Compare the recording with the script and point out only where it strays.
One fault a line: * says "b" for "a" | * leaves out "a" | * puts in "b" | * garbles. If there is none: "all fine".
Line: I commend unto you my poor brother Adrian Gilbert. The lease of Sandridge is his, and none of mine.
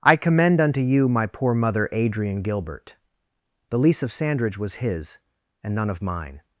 * says "mother" for "brother"
* says "was" for "is"